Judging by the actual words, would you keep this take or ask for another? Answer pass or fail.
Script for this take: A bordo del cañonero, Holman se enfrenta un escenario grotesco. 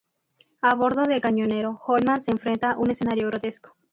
pass